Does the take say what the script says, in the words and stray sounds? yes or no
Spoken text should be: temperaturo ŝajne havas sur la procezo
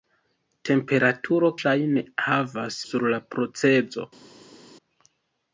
yes